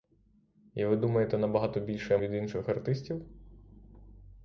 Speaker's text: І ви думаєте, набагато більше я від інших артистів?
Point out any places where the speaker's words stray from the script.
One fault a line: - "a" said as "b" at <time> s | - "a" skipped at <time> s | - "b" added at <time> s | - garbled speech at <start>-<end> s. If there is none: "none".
none